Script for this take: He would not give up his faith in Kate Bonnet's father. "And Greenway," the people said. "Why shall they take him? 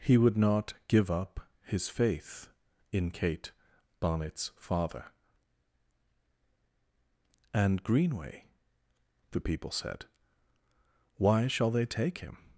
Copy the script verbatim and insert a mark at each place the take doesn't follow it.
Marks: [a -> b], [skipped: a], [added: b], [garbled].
He would not give up his faith in Kate Bonnet's father. "And Greenway," the people said. "Why shall they take him?